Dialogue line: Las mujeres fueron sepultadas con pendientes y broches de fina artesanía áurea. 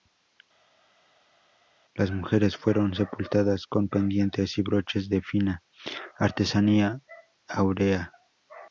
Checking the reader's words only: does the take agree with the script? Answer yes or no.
yes